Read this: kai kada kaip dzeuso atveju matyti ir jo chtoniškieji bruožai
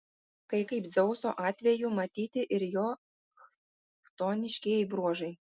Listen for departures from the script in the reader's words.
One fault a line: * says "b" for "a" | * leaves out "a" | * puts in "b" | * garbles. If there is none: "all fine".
* leaves out "kada"